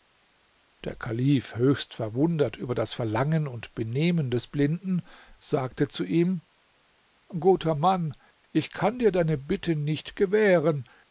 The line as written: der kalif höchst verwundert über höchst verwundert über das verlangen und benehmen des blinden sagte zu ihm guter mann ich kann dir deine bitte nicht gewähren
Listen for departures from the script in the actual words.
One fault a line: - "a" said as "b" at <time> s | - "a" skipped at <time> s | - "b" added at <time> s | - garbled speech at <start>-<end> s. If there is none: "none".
- "höchst verwundert über" skipped at 2.7 s